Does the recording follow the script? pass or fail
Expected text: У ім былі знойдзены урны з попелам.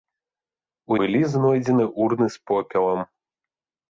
fail